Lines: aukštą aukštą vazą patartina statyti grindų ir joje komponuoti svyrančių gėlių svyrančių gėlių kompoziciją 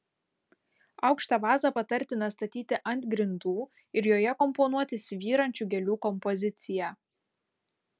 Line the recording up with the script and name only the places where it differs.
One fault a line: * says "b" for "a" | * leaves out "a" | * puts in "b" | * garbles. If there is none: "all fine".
* leaves out "aukštą"
* puts in "ant"
* leaves out "svyrančių gėlių"